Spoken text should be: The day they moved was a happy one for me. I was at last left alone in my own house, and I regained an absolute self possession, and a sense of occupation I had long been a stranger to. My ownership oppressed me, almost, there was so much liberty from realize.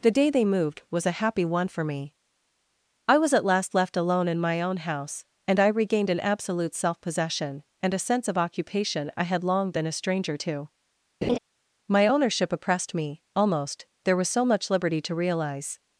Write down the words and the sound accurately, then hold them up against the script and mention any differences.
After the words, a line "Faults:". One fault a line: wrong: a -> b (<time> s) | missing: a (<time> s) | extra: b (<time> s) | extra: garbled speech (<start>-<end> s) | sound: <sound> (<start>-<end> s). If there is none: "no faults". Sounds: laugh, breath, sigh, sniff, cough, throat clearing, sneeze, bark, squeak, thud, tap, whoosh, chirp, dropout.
The day they moved was a happy one for me. I was at last left alone in my own house, and I regained an absolute self possession, and a sense of occupation I had long been a stranger to. My ownership oppressed me, almost, there was so much liberty to realize.
Faults:
sound: laugh (11.2-11.4 s)
wrong: from -> to (15.0 s)